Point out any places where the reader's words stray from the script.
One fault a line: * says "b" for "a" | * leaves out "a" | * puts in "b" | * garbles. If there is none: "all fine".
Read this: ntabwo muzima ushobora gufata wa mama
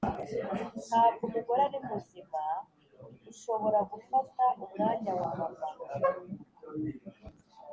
* puts in "umugore ari"
* puts in "umwanya"